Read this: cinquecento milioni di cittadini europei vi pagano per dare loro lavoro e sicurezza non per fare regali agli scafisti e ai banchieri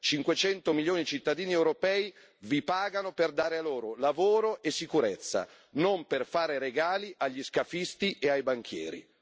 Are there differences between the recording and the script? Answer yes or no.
no